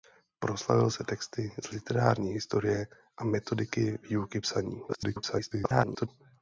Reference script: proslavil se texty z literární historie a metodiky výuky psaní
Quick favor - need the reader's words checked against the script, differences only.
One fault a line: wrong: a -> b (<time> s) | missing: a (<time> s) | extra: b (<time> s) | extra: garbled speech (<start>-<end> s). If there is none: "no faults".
extra: garbled speech (4.9-6.1 s)